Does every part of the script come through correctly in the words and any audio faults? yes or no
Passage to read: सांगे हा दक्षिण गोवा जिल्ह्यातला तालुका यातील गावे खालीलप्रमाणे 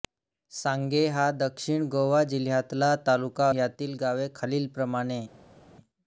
yes